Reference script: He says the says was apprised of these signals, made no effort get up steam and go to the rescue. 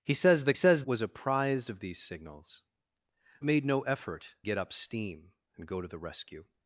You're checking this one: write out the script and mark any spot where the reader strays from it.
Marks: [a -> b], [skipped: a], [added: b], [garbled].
He says the says was apprised of these signals, made no effort get up steam and go to the rescue.